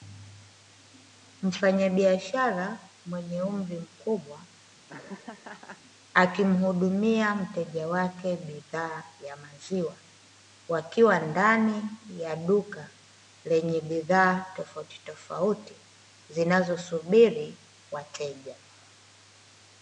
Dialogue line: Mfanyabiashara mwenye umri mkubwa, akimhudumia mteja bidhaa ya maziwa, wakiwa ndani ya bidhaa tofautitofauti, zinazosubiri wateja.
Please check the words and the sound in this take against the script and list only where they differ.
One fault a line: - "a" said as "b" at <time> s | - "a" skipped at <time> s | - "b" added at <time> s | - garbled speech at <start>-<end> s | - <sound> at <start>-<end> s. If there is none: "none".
- laugh at 4.9-5.8 s
- "wake" added at 7.9 s
- "duka lenye" added at 12.4 s